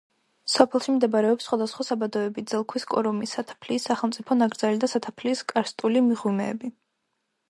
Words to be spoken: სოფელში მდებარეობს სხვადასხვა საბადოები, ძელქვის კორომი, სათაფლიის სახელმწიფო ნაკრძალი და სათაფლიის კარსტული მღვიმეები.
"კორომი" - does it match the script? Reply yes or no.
yes